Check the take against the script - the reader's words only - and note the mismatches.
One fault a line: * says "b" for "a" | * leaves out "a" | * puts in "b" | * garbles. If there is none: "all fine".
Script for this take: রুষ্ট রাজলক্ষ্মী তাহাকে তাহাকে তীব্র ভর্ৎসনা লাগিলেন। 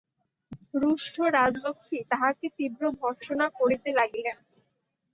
* leaves out "তাহাকে"
* puts in "করিতে"